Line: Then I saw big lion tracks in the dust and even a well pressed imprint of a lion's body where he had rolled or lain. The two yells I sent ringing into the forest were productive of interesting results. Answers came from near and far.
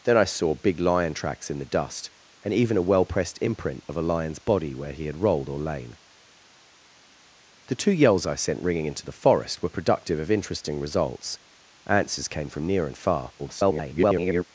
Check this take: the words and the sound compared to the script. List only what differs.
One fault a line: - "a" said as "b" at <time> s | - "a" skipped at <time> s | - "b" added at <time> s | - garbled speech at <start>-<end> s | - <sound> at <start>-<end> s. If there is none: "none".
- garbled speech at 13.4-14.4 s